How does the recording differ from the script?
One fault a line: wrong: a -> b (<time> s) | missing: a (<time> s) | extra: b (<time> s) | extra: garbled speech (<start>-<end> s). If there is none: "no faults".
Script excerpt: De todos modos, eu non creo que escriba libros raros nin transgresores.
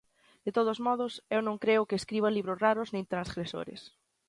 no faults